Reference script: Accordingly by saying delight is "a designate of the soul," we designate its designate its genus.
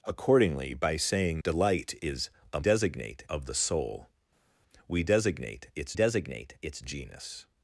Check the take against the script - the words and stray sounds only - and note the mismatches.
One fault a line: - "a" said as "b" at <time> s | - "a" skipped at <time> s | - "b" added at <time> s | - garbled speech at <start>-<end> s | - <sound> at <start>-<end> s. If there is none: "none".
none